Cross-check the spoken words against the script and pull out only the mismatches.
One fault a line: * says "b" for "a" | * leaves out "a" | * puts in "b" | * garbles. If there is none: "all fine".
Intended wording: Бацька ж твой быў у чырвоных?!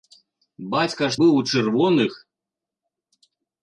* leaves out "твой"